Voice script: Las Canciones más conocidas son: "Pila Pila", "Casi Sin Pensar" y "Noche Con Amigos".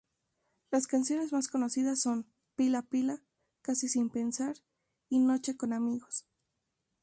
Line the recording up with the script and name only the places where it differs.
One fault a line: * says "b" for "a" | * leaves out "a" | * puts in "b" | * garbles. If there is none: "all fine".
all fine